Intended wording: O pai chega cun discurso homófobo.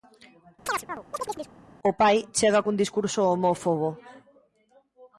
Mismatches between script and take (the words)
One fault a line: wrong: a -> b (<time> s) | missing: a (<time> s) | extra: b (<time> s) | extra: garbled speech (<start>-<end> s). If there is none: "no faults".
no faults